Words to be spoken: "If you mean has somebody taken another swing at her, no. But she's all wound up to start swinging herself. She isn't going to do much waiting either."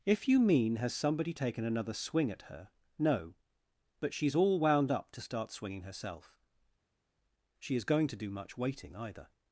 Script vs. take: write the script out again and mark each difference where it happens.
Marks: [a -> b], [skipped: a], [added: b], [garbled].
"If you mean has somebody taken another swing at her, no. But she's all wound up to start swinging herself. She [isn't -> is] going to do much waiting either."